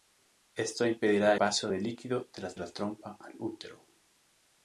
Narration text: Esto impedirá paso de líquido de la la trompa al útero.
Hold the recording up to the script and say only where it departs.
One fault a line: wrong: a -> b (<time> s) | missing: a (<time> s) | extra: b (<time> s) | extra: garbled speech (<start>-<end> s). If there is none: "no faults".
no faults